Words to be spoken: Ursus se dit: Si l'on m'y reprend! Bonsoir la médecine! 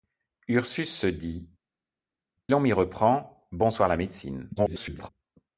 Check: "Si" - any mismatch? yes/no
yes